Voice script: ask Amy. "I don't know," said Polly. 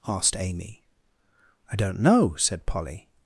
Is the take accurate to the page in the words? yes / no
no